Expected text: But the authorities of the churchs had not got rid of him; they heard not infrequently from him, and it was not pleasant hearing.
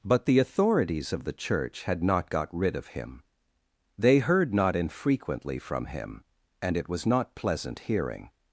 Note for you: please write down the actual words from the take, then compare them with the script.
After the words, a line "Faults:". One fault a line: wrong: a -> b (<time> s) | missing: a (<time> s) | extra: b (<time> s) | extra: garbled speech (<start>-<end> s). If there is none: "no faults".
But the authorities of the church had not got rid of him; they heard not infrequently from him, and it was not pleasant hearing.
Faults:
wrong: churchs -> church (1.3 s)